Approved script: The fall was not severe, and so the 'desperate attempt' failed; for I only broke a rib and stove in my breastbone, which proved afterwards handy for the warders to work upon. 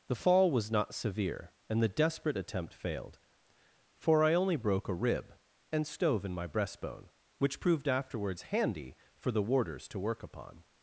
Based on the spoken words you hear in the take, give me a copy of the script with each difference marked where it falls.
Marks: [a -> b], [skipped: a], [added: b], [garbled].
The fall was not severe, and [skipped: so] the 'desperate attempt' failed; for I only broke a rib and stove in my breastbone, which proved afterwards handy for the warders to work upon.